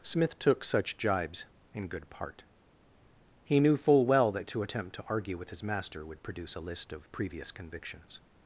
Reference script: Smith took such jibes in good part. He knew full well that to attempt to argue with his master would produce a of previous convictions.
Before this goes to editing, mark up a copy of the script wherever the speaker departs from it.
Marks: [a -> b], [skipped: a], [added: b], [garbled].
Smith took such jibes in good part. He knew full well that to attempt to argue with his master would produce a [added: list] of previous convictions.